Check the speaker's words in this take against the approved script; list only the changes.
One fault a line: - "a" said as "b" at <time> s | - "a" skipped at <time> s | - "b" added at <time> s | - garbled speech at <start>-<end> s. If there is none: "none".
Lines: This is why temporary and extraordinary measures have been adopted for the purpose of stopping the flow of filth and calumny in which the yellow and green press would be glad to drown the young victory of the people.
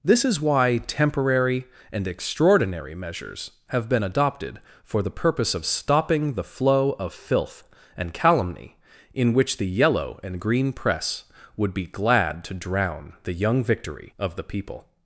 none